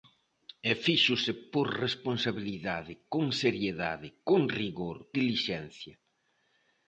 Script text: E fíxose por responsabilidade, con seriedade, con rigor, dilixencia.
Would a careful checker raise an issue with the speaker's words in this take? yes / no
no